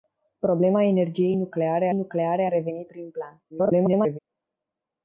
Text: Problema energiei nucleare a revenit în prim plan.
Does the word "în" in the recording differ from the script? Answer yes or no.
yes